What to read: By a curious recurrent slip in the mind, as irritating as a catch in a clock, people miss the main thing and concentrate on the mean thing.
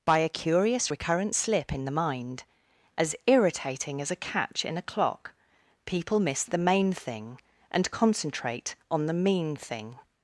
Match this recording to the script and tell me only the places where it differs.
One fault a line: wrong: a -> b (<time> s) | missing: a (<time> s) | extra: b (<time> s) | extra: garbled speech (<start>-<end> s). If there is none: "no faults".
no faults